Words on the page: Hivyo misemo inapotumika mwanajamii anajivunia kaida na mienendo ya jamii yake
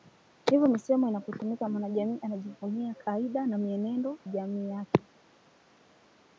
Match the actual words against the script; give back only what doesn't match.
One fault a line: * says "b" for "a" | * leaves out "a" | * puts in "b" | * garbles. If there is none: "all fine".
* leaves out "ya"